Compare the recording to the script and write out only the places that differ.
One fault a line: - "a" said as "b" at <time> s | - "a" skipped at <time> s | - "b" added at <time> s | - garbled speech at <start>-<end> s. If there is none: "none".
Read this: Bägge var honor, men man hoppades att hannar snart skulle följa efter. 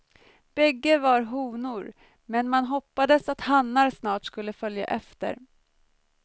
none